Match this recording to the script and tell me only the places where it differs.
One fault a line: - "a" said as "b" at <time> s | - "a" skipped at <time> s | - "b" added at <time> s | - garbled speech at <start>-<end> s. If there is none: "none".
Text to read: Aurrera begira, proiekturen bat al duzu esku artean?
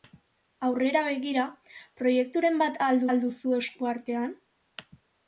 - "al" added at 3.1 s